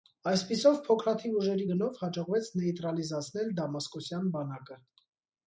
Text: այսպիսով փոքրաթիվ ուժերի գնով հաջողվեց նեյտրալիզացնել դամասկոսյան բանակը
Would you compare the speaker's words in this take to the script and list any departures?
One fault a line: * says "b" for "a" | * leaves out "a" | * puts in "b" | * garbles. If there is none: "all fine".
all fine